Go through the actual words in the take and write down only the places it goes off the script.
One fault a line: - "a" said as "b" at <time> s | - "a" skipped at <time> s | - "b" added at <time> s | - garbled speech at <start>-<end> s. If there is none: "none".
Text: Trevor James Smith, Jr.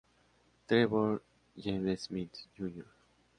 none